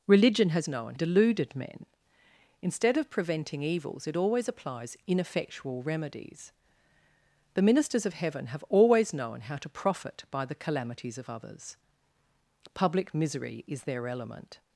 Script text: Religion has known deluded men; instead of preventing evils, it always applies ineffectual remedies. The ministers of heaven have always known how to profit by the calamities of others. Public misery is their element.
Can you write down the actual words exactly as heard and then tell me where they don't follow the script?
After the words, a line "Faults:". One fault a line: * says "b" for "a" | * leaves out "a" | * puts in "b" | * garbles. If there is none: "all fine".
Religion has known deluded men; instead of preventing evils, it always applies ineffectual remedies. The ministers of heaven have always known how to profit by the calamities of others. Public misery is their element.
Faults:
all fine